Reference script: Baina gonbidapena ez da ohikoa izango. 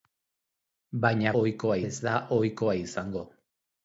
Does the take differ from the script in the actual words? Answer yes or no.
yes